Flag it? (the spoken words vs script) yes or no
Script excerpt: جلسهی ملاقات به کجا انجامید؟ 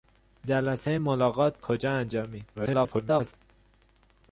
yes